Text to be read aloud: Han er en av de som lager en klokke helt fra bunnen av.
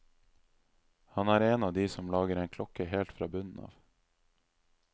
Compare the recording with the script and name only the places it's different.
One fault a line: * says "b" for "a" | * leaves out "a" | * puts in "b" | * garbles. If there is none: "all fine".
all fine